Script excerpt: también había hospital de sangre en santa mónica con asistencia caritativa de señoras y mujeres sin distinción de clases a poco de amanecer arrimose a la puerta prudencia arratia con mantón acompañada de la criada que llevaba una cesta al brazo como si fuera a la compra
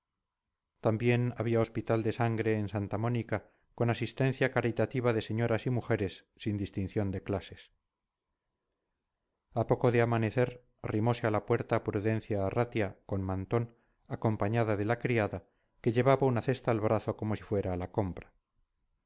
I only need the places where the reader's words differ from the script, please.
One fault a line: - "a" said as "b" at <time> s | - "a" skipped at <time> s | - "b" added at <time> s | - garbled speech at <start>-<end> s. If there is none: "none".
none